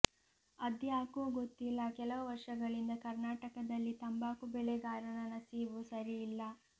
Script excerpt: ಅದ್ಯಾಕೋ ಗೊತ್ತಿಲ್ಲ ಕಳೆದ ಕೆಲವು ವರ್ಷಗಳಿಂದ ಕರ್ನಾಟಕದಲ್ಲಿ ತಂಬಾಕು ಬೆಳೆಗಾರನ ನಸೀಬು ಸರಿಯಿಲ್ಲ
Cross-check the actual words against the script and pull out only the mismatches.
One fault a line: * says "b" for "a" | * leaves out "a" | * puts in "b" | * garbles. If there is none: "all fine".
* leaves out "ಕಳೆದ"